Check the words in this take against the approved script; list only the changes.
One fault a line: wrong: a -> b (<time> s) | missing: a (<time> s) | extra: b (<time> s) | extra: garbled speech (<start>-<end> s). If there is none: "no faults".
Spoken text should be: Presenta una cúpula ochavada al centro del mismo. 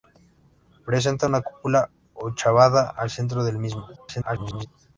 extra: garbled speech (4.0-4.7 s)